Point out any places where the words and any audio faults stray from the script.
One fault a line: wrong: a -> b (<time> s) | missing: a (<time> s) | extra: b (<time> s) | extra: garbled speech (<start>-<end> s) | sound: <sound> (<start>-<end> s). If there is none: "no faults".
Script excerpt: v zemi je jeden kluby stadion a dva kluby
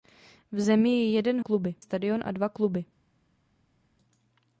no faults